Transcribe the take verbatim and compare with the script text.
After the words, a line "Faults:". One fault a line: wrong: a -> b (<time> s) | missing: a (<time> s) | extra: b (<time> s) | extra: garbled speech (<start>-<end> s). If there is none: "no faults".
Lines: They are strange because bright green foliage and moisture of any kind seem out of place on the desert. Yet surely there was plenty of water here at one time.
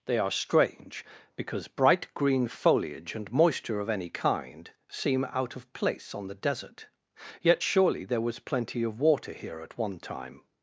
They are strange because bright green foliage and moisture of any kind seem out of place on the desert. Yet surely there was plenty of water here at one time.
Faults:
no faults